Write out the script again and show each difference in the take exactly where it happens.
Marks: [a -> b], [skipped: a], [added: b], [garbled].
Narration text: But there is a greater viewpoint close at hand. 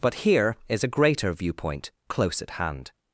But [there -> here] is a greater viewpoint close at hand.